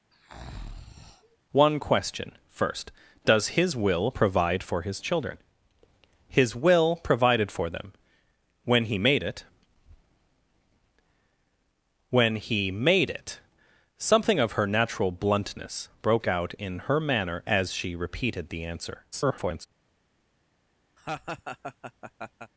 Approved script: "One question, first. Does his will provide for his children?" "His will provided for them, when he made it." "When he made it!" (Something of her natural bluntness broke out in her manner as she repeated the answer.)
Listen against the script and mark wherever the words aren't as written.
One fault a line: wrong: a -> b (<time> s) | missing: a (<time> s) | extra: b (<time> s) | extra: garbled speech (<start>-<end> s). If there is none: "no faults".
extra: garbled speech (19.1-19.7 s)